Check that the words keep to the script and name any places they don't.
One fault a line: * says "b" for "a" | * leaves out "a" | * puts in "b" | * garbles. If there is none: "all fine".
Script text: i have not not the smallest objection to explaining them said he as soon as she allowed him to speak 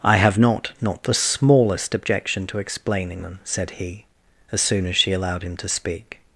all fine